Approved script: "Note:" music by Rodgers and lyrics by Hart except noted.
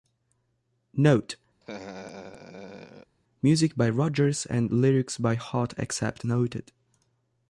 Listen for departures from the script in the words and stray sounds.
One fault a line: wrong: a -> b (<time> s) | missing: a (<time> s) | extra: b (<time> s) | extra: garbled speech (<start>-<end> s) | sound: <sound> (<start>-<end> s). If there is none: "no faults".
sound: laugh (1.6-3.2 s)